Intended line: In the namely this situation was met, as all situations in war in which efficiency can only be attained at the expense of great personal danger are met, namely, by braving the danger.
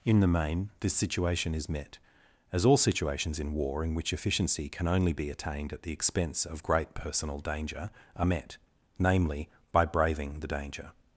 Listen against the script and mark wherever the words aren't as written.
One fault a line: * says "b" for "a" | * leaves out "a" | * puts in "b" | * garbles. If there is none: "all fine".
* says "main" for "namely"
* says "is" for "was"